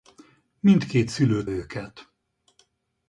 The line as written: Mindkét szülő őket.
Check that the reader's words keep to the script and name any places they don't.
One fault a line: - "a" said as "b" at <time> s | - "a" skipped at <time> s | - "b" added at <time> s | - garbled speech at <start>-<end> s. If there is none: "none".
none